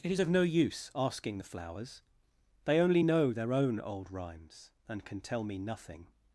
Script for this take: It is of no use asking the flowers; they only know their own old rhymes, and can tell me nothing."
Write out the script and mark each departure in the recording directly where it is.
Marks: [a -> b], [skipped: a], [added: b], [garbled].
It is of no use asking the flowers; they only know their own old rhymes, and can tell me nothing."